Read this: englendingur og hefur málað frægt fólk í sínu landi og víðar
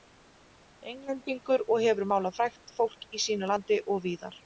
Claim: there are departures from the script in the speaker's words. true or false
false